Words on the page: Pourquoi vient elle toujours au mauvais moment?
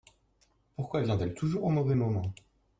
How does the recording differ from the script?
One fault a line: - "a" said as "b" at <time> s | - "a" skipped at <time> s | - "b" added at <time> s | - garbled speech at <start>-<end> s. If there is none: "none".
none